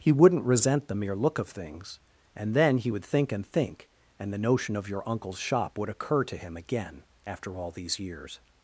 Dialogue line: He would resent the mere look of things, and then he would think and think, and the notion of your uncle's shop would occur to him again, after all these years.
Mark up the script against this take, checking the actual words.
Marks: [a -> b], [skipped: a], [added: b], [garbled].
He [would -> wouldn't] resent the mere look of things, and then he would think and think, and the notion of your uncle's shop would occur to him again, after all these years.